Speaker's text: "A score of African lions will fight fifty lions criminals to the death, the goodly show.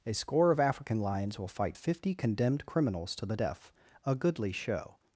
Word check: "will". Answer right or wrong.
right